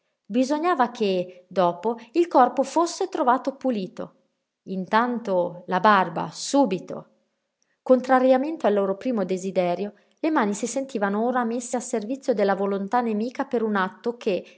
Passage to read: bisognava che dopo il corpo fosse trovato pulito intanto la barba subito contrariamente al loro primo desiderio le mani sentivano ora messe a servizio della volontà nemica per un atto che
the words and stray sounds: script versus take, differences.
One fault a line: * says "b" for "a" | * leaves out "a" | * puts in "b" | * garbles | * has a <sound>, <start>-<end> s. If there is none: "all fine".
* puts in "si"